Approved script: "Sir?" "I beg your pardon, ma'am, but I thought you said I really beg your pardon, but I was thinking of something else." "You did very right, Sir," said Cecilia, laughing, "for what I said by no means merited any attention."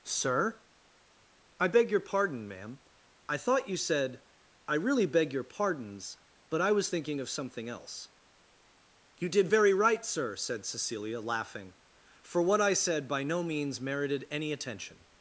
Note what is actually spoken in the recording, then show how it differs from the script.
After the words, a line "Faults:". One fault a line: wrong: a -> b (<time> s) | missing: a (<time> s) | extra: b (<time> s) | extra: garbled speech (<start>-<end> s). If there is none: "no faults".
"Sir?" "I beg your pardon, ma'am, I thought you said I really beg your pardons, but I was thinking of something else." "You did very right, Sir," said Cecilia, laughing, "for what I said by no means merited any attention."
Faults:
missing: but (2.8 s)
wrong: pardon -> pardons (5.4 s)